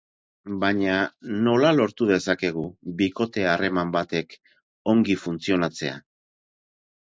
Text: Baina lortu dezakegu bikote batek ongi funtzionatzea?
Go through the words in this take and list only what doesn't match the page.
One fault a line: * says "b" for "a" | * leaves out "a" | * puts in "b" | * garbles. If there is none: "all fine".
* puts in "nola"
* puts in "harreman"